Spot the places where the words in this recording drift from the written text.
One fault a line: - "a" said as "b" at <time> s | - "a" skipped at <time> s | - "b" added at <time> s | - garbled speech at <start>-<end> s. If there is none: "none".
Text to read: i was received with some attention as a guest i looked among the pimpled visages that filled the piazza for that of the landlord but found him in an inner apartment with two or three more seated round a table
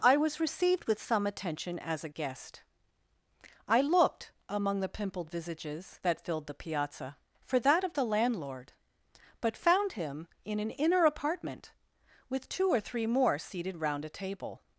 none